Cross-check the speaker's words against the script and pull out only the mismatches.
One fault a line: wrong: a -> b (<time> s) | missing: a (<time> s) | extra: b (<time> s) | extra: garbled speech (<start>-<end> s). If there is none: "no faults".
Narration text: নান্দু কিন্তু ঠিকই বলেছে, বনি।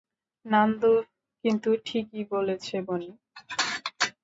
no faults